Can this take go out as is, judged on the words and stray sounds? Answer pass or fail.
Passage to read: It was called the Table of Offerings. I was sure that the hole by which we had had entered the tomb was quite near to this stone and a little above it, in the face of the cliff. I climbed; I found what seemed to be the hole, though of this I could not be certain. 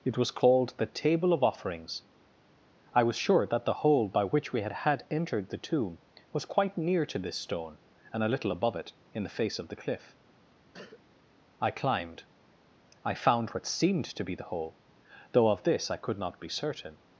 fail